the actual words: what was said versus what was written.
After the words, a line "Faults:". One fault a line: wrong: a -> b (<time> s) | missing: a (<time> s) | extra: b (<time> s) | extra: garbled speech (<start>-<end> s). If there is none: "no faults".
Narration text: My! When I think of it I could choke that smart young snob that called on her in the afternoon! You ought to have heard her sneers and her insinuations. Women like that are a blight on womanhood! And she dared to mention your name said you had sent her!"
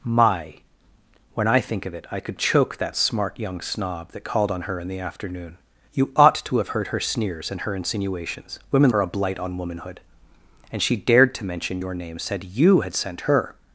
My! When I think of it I could choke that smart young snob that called on her in the afternoon! You ought to have heard her sneers and her insinuations. Women are a blight on womanhood! And she dared to mention your name said you had sent her!"
Faults:
missing: like that (8.9 s)